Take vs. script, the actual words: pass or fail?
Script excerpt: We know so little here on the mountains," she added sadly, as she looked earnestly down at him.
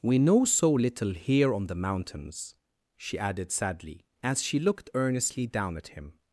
pass